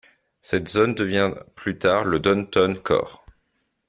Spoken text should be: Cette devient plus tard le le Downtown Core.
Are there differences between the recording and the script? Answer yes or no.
yes